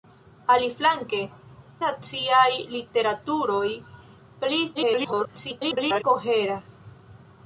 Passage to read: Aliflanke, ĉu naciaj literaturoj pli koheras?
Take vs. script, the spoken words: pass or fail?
fail